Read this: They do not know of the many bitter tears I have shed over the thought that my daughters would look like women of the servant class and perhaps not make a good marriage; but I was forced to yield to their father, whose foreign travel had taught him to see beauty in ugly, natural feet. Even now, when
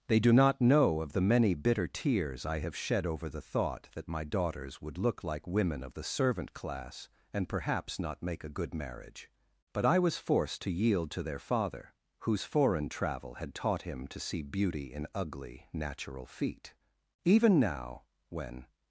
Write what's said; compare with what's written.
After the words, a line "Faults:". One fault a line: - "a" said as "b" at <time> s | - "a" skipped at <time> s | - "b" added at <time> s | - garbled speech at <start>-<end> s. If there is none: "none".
They do not know of the many bitter tears I have shed over the thought that my daughters would look like women of the servant class and perhaps not make a good marriage; but I was forced to yield to their father, whose foreign travel had taught him to see beauty in ugly, natural feet. Even now, when
Faults:
none